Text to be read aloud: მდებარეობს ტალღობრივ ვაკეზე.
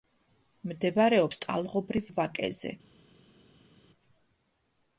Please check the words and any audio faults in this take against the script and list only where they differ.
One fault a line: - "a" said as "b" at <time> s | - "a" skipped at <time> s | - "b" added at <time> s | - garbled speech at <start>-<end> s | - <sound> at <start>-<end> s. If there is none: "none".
none